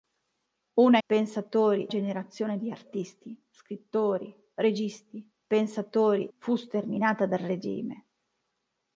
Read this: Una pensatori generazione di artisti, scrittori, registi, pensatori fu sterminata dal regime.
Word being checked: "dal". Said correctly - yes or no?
yes